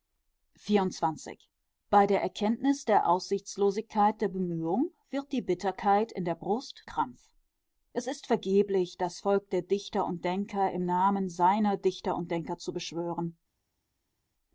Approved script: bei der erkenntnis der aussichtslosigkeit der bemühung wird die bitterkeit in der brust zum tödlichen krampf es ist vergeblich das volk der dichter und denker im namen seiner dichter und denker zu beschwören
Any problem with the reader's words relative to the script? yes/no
yes